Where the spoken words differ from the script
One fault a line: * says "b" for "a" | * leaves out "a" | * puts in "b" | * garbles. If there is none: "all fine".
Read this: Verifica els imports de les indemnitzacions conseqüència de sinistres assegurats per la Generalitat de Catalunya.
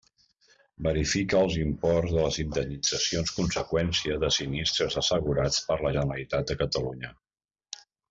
all fine